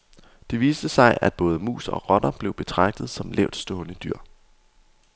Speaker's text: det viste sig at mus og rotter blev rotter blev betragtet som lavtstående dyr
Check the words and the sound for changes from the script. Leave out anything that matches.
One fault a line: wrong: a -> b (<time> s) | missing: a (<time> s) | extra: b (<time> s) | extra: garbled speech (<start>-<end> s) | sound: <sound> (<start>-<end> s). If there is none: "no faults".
extra: både (1.3 s)
missing: rotter blev (2.5 s)